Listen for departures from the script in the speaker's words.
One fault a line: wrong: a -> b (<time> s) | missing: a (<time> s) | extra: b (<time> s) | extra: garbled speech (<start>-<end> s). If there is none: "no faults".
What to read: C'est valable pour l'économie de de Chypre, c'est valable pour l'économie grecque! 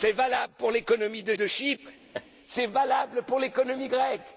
no faults